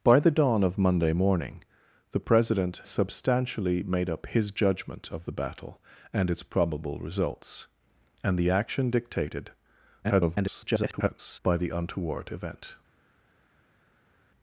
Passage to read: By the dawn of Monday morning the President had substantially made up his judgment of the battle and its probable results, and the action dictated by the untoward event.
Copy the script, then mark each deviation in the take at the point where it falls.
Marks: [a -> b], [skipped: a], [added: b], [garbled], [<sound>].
By the dawn of Monday morning the President [skipped: had] substantially made up his judgment of the battle and its probable results, and the action dictated [garbled] by the untoward event.